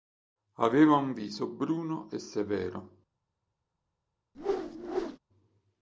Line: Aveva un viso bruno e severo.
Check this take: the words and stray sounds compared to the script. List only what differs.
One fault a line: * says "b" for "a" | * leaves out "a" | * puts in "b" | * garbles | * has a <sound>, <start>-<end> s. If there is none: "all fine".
* has a whoosh, 4.3-5.2 s